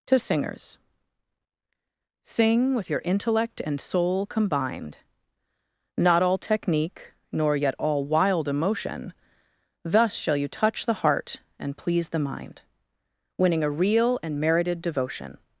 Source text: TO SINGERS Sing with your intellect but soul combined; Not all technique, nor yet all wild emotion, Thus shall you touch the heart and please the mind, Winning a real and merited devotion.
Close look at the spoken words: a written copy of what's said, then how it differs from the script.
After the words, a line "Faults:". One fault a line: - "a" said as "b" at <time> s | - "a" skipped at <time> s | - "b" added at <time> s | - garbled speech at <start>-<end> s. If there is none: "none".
TO SINGERS Sing with your intellect and soul combined; Not all technique, nor yet all wild emotion, Thus shall you touch the heart and please the mind, Winning a real and merited devotion.
Faults:
- "but" said as "and" at 3.6 s